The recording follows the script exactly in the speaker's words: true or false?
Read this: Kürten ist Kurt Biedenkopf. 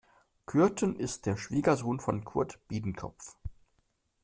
false